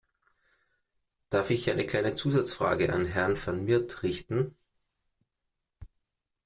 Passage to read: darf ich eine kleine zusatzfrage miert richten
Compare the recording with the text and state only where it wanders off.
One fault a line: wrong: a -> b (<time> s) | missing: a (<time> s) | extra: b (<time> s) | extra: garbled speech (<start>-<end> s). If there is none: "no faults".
extra: an herrn van (2.9 s)